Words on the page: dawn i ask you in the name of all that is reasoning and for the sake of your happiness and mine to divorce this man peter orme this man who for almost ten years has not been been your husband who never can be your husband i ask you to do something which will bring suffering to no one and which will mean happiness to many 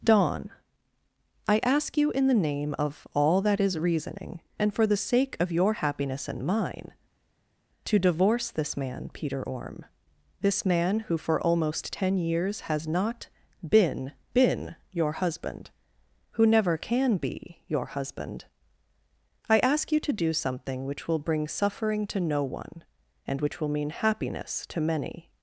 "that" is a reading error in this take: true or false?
false